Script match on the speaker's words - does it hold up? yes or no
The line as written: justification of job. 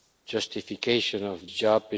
yes